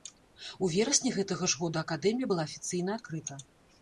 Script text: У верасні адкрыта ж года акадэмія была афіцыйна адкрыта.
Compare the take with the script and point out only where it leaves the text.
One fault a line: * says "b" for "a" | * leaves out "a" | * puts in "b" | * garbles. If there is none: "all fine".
* says "гэтага" for "адкрыта"